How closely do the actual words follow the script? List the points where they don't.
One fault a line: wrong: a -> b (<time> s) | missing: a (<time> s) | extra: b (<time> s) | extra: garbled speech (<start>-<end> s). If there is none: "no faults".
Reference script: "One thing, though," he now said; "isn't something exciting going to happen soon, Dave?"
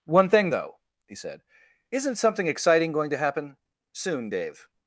missing: now (1.2 s)